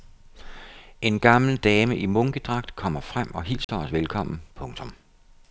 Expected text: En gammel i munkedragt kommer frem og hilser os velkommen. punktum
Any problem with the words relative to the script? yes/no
yes